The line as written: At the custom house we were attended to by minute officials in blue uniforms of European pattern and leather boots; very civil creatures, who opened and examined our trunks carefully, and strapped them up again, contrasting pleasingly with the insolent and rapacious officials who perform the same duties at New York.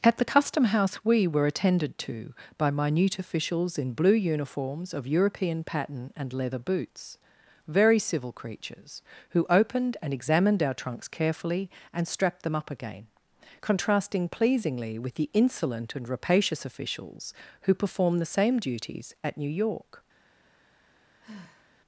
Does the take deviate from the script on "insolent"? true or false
false